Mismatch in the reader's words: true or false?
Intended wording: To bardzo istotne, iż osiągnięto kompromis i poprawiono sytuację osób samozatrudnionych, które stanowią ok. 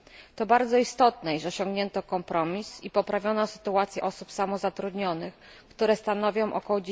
false